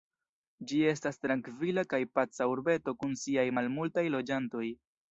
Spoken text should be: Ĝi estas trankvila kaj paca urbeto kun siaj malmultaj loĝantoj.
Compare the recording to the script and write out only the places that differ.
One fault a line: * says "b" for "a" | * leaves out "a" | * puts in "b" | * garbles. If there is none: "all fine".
all fine